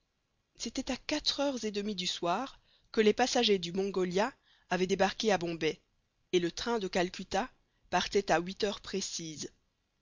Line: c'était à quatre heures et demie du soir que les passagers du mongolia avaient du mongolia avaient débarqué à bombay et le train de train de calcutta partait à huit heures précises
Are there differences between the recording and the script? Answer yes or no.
yes